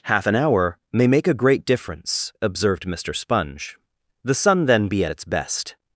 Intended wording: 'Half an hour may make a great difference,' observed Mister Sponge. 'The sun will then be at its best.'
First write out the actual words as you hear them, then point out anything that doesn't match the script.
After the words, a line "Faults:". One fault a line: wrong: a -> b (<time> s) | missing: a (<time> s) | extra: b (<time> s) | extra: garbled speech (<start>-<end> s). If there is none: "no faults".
'Half an hour may make a great difference,' observed Mister Sponge. 'The sun then be at its best.'
Faults:
missing: will (4.6 s)